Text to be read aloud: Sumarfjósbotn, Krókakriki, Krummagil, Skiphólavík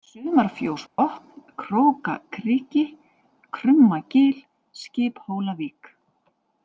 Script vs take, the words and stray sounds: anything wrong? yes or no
yes